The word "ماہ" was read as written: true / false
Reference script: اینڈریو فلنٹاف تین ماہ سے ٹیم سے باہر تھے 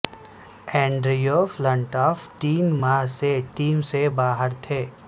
true